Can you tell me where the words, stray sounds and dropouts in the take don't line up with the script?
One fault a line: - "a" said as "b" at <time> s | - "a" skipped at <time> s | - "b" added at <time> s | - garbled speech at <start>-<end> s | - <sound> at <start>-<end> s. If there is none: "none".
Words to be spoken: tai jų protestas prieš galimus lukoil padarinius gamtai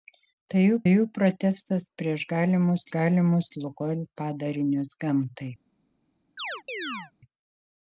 - "jų" added at 0.9 s
- "galimus" added at 3.0 s
- chirp at 6.4-7.1 s